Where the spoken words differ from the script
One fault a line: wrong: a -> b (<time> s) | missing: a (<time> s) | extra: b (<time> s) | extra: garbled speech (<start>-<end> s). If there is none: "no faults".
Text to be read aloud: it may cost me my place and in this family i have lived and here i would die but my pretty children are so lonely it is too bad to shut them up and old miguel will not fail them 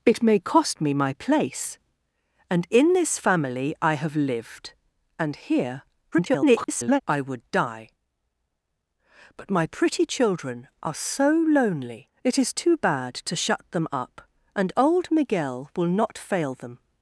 extra: garbled speech (6.1-7.0 s)